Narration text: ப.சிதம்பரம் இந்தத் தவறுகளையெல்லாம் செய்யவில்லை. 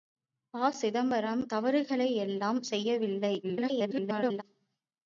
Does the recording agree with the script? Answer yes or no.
no